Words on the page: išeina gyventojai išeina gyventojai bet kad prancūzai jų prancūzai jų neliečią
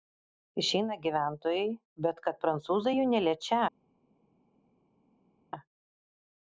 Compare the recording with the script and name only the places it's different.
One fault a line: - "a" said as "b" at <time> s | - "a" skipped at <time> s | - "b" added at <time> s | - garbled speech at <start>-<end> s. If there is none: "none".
- "išeina gyventojai" skipped at 1.7 s
- "prancūzai jų" skipped at 3.1 s